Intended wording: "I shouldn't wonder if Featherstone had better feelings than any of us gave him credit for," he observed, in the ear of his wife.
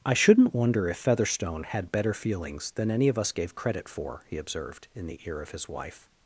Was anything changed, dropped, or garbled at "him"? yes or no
yes